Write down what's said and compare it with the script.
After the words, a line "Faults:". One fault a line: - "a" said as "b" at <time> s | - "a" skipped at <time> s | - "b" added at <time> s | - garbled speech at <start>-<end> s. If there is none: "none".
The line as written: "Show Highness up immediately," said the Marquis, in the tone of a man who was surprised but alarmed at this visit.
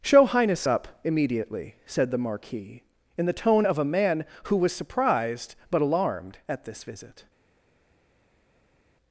"Show Highness up immediately," said the Marquis, in the tone of a man who was surprised but alarmed at this visit.
Faults:
none